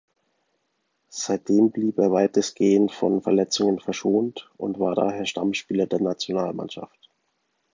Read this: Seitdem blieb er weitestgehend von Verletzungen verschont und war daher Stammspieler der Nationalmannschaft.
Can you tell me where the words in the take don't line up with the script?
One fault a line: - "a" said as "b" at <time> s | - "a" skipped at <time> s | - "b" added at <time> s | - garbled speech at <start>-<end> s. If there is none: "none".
none